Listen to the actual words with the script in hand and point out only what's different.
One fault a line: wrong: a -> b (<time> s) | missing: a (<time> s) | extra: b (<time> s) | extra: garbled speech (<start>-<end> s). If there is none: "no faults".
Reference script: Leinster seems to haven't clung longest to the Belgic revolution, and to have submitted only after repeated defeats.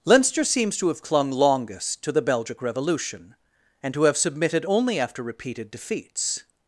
wrong: haven't -> have (0.9 s)